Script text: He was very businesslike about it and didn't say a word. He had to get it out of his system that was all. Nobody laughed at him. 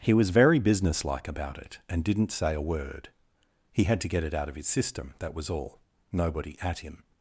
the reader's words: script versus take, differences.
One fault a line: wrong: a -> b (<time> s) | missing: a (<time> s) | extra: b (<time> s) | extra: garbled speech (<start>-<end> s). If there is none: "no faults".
missing: laughed (6.6 s)